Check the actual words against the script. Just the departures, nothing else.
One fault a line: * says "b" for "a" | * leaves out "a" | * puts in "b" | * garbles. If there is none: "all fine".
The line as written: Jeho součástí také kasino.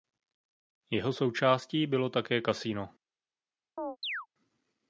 * puts in "bylo"